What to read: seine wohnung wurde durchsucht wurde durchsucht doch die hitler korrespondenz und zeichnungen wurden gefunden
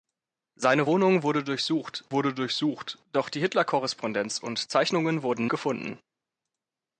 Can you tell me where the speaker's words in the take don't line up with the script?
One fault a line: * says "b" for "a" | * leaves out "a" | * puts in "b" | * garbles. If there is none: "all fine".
all fine